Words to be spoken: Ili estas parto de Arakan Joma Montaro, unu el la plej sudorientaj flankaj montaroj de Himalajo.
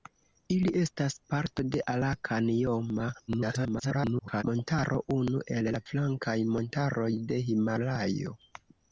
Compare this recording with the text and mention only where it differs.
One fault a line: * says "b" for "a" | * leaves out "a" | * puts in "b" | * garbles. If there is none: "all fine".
* garbles
* leaves out "plej sudorientaj"